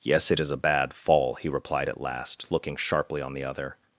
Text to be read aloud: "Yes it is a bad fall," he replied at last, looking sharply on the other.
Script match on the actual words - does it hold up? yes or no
yes